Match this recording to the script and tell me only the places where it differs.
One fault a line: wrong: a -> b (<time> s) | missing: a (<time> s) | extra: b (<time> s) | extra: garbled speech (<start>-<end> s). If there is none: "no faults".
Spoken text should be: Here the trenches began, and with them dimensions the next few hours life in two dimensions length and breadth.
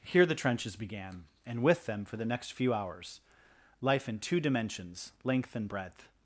wrong: dimensions -> for (2.0 s)